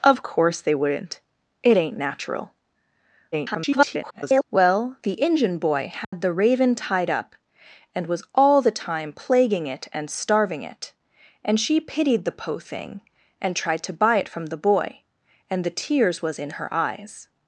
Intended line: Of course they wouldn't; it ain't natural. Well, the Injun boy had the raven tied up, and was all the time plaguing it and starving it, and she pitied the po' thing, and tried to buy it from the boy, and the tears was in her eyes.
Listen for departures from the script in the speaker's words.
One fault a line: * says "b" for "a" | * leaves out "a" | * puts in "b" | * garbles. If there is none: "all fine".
* garbles